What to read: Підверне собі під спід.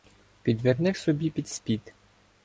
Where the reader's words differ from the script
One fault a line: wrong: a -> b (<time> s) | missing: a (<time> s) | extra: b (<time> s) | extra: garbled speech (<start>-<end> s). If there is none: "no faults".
no faults